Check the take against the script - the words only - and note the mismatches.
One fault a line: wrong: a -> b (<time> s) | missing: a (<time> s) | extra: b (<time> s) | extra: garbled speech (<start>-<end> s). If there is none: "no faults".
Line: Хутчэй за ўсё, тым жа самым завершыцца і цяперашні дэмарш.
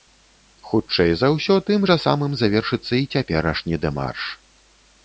no faults